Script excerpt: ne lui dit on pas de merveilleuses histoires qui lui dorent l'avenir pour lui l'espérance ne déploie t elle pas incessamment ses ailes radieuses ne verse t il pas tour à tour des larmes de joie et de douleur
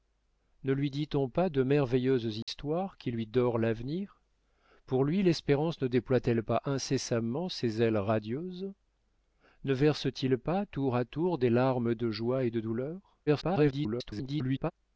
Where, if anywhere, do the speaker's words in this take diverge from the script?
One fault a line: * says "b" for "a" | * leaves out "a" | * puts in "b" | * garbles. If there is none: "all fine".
* garbles